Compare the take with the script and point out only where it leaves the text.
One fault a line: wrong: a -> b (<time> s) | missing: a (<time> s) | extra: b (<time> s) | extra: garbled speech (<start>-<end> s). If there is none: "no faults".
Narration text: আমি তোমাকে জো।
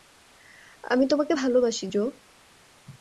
extra: ভালোবাসি (1.3 s)